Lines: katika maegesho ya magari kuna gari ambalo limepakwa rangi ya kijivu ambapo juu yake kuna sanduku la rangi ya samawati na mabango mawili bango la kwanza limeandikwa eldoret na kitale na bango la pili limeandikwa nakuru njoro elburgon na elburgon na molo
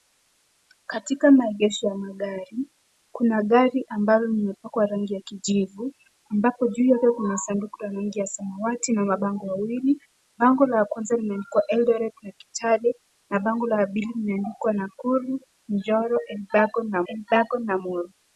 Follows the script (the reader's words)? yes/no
yes